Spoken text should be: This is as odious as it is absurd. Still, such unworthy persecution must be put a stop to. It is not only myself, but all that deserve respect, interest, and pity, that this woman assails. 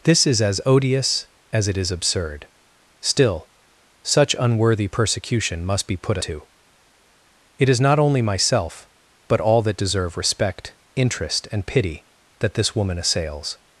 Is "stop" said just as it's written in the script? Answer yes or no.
no